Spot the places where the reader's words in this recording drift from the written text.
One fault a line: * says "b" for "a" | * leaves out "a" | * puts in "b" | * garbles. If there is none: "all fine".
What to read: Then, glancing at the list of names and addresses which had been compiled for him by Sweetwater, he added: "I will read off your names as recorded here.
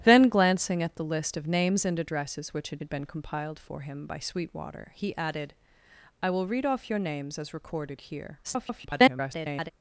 * puts in "had"
* garbles